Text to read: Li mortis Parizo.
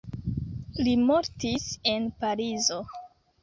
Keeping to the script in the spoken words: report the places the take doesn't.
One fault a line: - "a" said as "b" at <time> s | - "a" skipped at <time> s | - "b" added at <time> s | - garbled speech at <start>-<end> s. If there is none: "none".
- "en" added at 1.9 s